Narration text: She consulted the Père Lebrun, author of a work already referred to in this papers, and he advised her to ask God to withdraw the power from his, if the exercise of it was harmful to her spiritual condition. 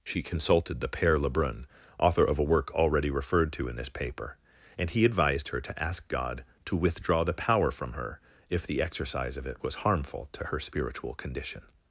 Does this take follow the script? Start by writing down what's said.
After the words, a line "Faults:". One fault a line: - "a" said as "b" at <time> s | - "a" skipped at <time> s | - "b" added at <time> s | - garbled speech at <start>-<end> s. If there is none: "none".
She consulted the Père Lebrun, author of a work already referred to in this paper, and he advised her to ask God to withdraw the power from her, if the exercise of it was harmful to her spiritual condition.
Faults:
- "papers" said as "paper" at 3.9 s
- "his" said as "her" at 7.9 s